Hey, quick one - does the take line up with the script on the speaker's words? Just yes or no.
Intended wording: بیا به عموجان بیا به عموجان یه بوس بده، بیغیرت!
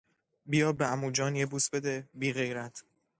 no